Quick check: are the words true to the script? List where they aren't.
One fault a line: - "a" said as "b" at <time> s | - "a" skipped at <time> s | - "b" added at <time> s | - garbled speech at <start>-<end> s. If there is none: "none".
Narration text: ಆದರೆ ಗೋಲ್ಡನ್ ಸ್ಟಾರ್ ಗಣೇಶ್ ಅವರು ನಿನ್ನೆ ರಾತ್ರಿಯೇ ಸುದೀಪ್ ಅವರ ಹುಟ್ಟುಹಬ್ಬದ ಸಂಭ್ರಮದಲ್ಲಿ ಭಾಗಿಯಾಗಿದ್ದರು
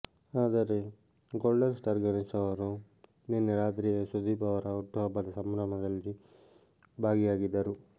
none